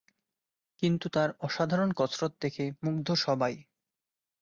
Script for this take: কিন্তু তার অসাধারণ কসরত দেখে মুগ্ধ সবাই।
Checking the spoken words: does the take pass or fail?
pass